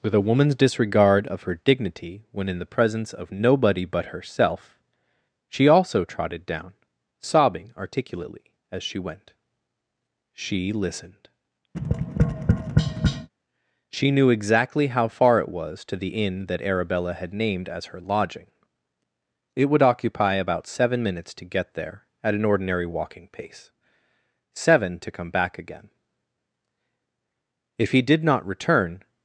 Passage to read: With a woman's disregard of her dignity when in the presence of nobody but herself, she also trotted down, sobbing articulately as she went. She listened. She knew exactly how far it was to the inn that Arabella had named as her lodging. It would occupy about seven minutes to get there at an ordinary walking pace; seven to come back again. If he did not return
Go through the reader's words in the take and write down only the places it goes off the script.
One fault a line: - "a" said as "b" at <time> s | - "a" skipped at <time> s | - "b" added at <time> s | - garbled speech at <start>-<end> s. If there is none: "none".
none